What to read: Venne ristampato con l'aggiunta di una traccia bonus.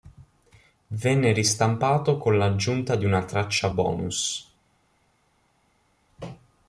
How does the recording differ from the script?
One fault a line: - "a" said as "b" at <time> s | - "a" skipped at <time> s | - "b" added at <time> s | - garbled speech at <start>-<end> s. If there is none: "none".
none